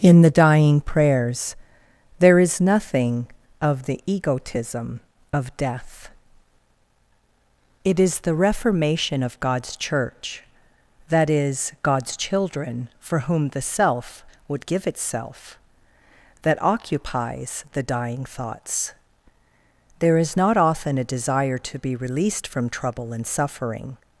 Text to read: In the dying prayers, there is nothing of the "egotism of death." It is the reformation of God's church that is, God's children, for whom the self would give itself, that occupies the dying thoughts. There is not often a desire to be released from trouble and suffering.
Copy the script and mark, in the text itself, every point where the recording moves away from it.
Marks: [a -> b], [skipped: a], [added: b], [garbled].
In the dying prayers, there is nothing of the "egotism of death." It is the reformation of God's church that is, God's children, for whom the self would give itself, that occupies the dying thoughts. There is not often a desire to be released from trouble and suffering.